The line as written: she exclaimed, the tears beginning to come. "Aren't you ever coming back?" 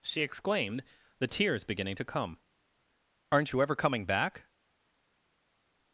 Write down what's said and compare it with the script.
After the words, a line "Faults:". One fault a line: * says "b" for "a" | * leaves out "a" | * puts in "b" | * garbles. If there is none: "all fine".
she exclaimed, the tears beginning to come. "Aren't you ever coming back?"
Faults:
all fine